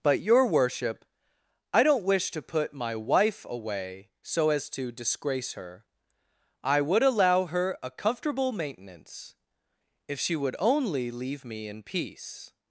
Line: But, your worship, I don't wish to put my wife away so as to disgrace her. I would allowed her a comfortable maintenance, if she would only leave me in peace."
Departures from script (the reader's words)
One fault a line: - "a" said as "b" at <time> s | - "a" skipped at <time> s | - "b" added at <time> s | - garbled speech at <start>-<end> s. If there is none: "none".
- "allowed" said as "allow" at 7.0 s